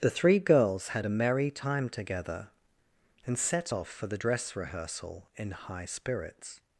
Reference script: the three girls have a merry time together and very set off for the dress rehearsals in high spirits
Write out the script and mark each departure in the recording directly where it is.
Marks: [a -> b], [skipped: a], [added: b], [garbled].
the three girls [have -> had] a merry time together and [skipped: very] set off for the dress [rehearsals -> rehearsal] in high spirits